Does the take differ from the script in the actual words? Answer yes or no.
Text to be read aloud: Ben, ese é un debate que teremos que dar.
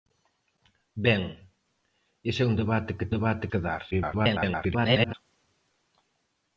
yes